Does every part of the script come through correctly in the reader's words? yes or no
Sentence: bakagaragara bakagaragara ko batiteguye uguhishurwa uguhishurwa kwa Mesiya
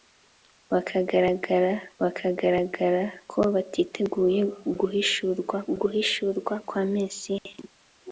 yes